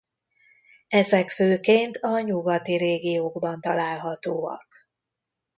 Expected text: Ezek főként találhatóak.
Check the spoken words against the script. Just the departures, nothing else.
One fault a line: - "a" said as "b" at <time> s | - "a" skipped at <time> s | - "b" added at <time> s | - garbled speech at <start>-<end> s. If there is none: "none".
- "a nyugati régiókban" added at 2.0 s